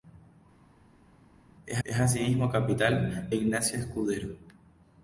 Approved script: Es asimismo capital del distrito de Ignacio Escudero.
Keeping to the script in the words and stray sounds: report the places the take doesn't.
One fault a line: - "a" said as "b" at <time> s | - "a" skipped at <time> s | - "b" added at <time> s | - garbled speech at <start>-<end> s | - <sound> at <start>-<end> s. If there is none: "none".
- "es" added at 1.8 s
- "del distrito de" skipped at 3.3 s